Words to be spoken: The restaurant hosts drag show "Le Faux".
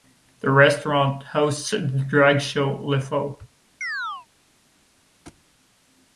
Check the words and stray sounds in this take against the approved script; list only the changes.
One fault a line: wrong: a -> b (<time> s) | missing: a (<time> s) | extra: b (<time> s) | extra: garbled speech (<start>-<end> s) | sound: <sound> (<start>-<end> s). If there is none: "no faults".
extra: the (1.7 s)
sound: chirp (3.8-4.3 s)
sound: thud (5.3-5.4 s)